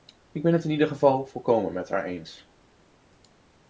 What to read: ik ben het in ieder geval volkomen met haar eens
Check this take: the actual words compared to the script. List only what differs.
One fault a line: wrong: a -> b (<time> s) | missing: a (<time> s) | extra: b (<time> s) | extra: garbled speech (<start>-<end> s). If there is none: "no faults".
no faults